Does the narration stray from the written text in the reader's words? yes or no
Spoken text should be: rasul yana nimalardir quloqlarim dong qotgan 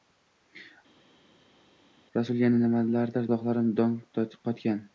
no